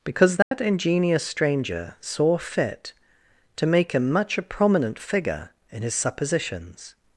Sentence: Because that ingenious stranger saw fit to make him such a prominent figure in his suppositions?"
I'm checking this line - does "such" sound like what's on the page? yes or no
no